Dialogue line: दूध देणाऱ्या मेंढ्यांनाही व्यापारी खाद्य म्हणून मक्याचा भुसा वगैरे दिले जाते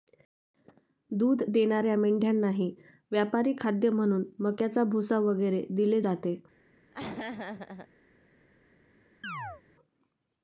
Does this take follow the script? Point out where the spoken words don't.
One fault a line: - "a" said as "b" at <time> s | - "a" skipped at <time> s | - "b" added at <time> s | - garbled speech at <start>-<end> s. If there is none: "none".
none